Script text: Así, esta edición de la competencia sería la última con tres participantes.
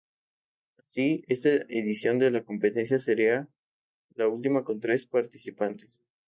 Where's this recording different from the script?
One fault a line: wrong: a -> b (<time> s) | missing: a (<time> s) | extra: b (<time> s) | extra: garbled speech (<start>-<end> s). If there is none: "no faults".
no faults